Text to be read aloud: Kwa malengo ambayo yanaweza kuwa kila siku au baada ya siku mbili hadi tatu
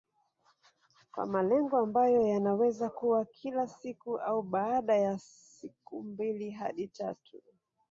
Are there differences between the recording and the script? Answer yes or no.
no